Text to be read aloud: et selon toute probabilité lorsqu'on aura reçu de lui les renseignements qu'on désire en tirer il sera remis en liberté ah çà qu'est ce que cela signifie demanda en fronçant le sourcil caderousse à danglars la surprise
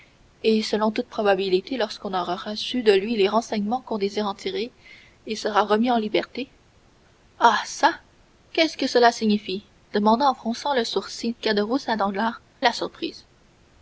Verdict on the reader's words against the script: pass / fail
pass